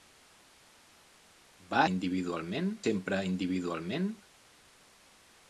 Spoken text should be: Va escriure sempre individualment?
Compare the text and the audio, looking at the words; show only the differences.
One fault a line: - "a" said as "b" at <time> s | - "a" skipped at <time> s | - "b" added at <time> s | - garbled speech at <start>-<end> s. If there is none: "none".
- "escriure" said as "individualment" at 1.9 s